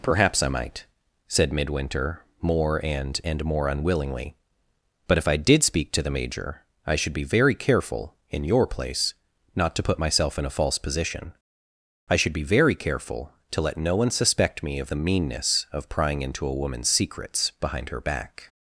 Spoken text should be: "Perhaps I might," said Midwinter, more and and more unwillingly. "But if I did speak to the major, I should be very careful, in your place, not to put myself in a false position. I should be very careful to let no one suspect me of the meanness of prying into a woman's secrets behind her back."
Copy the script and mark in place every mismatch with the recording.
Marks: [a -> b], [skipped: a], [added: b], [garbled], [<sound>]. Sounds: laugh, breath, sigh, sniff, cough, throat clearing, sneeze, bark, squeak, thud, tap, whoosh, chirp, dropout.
"Perhaps I might," said Midwinter, more and and more unwillingly. "But if I did speak to the major, I should be very careful, in your place, not to put myself in a false position. I should be very careful to let no one suspect me of the meanness of prying into a woman's secrets behind her back."